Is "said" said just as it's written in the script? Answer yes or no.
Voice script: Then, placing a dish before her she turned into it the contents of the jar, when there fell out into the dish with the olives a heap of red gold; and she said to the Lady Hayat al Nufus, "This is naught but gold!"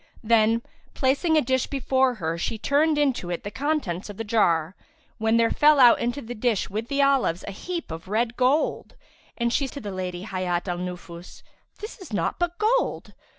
no